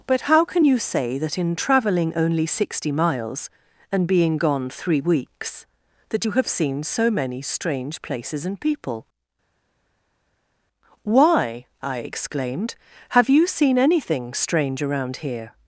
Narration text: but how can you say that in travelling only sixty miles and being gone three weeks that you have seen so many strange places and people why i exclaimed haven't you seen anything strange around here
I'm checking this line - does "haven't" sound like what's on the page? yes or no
no